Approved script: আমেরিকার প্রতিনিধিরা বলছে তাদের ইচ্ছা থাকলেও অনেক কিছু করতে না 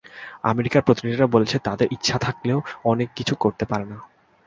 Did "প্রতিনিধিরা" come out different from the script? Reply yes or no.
no